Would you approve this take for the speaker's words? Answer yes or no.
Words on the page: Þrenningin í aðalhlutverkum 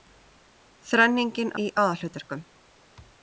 yes